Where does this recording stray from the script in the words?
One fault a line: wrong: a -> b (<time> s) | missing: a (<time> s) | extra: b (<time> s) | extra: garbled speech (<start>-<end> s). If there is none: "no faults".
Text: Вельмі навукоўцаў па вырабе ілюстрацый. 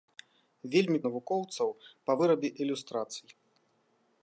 no faults